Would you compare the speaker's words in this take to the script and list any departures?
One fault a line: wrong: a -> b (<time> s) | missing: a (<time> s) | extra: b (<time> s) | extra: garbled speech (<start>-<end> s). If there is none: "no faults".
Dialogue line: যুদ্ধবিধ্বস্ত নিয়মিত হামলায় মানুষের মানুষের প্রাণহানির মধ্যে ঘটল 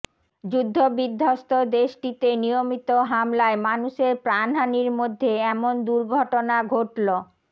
extra: দেশটিতে (1.8 s)
missing: মানুষের (4.1 s)
extra: এমন দুর্ঘটনা (5.5 s)